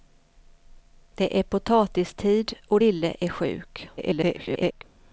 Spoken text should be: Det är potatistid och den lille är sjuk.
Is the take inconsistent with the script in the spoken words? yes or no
yes